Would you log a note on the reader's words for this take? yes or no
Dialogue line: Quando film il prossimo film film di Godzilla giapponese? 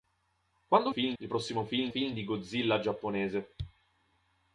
no